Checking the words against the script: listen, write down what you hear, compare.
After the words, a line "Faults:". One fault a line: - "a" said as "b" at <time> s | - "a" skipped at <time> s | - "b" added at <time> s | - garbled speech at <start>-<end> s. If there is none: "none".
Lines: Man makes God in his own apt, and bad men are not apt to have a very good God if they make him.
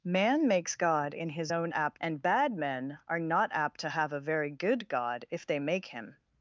Man makes God in his own apt, and bad men are not apt to have a very good God if they make him.
Faults:
none